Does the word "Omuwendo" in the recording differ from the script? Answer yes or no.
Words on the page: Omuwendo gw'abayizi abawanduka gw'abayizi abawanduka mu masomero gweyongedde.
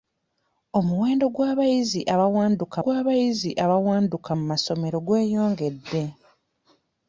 no